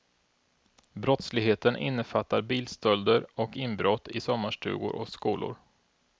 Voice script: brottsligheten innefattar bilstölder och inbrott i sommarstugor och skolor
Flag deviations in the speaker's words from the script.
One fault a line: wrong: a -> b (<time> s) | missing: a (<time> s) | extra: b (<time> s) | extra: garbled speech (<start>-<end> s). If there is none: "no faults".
no faults